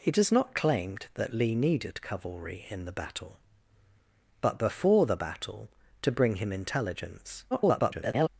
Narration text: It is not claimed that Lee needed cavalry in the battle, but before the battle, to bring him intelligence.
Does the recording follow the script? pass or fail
fail